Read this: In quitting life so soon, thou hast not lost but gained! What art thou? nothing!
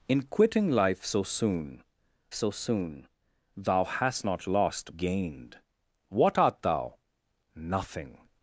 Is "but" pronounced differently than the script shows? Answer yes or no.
yes